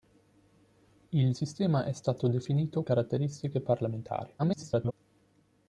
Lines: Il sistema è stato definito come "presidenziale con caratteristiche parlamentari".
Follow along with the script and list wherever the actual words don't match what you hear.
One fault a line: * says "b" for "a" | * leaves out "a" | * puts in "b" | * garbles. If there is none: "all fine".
* leaves out "come presidenziale con"
* garbles